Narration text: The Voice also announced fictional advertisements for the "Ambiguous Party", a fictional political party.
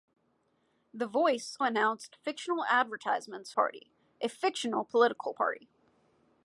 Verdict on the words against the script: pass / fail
fail